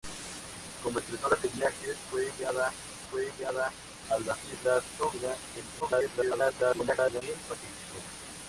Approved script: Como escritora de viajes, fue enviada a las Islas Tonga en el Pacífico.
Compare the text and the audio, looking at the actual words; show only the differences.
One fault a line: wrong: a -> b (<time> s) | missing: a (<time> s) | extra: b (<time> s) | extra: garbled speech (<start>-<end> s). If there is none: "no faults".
extra: fue enviada (3.1 s)
extra: garbled speech (5.8-7.2 s)